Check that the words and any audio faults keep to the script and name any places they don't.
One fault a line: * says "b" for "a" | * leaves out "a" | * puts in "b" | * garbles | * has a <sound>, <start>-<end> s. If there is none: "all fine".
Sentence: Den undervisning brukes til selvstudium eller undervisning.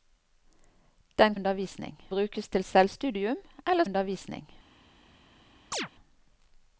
* has a chirp, 5.7-5.9 s